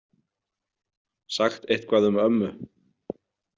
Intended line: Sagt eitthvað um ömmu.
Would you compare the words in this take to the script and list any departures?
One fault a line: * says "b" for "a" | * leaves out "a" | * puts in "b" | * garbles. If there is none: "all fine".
all fine